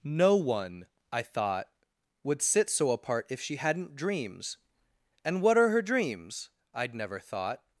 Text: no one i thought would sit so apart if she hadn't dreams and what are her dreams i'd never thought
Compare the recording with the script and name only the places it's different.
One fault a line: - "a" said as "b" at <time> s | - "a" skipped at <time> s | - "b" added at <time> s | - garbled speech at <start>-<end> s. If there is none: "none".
none